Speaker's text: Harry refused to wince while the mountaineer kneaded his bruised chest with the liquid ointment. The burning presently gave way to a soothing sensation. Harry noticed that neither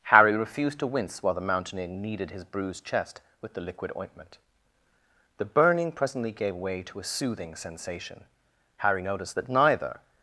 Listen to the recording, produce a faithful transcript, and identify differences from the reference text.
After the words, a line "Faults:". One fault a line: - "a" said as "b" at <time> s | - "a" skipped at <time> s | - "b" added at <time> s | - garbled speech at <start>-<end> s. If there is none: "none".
Harry refused to wince while the mountaineer kneaded his bruised chest with the liquid ointment. The burning presently gave way to a soothing sensation. Harry noticed that neither
Faults:
none